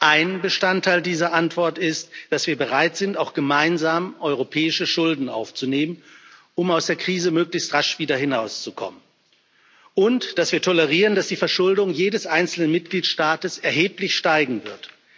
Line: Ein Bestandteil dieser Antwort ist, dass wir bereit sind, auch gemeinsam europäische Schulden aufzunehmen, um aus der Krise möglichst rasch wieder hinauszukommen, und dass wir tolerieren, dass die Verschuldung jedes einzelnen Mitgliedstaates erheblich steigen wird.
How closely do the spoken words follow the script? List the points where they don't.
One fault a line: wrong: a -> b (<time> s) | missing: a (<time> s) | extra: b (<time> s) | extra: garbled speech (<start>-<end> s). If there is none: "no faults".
no faults